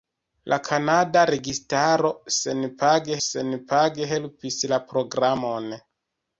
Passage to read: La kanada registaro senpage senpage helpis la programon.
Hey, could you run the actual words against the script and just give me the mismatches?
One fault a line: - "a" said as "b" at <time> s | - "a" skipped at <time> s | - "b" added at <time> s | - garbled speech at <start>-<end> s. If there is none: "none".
none